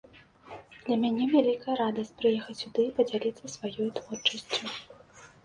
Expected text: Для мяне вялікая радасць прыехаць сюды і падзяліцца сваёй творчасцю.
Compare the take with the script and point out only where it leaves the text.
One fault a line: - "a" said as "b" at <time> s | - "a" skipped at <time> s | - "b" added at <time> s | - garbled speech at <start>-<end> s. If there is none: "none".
none